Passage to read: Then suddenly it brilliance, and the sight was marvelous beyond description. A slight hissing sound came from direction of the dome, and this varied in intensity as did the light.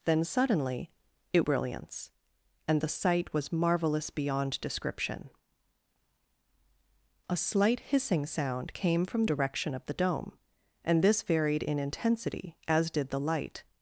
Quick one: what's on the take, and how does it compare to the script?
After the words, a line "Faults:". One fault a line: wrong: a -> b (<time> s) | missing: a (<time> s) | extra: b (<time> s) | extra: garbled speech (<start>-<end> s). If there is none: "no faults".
Then suddenly it brilliance, and the sight was marvelous beyond description. A slight hissing sound came from direction of the dome, and this varied in intensity as did the light.
Faults:
no faults